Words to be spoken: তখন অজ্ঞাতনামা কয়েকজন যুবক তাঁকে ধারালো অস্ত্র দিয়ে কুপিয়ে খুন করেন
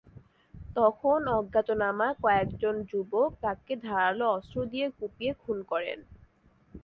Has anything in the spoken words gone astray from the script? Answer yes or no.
no